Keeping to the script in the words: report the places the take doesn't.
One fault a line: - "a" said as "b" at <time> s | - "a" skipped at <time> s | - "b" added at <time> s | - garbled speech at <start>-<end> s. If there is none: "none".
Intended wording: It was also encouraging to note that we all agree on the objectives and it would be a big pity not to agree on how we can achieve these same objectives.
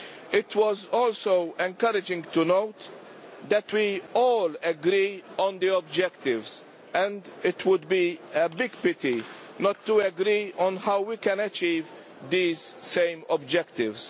none